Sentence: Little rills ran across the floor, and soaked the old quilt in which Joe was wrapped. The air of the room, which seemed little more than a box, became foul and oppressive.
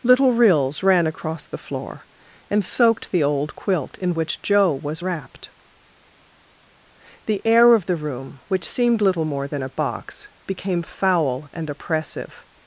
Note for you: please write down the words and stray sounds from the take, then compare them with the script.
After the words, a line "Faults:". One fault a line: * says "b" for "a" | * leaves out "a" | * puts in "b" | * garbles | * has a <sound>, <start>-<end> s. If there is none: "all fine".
Little rills ran across the floor, and soaked the old quilt in which Joe was wrapped. The air of the room, which seemed little more than a box, became foul and oppressive.
Faults:
all fine